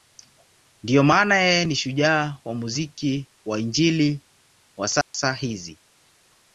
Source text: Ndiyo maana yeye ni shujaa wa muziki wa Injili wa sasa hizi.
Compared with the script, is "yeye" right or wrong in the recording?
right